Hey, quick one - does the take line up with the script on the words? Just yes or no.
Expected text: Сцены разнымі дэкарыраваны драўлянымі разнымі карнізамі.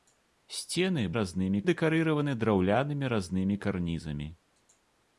yes